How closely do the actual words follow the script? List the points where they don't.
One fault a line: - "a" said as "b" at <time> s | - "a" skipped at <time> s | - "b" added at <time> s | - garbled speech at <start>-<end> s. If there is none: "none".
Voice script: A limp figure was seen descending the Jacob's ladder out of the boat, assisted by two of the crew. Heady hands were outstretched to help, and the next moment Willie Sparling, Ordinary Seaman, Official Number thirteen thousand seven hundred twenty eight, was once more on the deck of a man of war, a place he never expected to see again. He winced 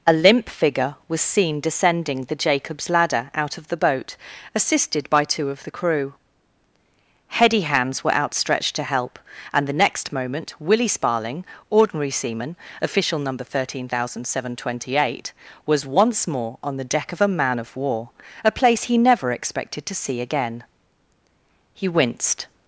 none